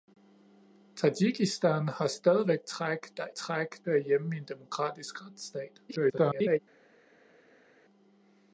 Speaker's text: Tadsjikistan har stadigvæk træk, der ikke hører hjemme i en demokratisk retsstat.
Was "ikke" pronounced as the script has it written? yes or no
no